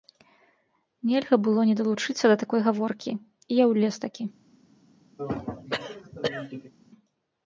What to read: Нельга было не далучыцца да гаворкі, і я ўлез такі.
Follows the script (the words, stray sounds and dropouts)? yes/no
no